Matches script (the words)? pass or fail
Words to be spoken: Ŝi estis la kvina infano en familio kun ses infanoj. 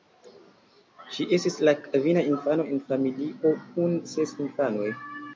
pass